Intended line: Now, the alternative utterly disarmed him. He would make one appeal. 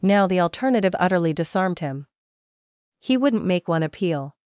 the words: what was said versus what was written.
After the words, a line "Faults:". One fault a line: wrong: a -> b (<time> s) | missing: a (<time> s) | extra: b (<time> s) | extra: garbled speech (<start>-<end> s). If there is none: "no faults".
Now, the alternative utterly disarmed him. He wouldn't make one appeal.
Faults:
wrong: would -> wouldn't (3.2 s)